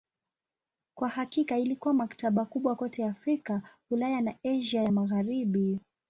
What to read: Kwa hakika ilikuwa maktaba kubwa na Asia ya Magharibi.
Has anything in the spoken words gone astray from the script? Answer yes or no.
yes